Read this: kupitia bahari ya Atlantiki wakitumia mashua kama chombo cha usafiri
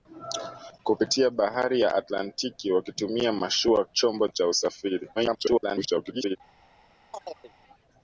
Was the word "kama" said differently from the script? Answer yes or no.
yes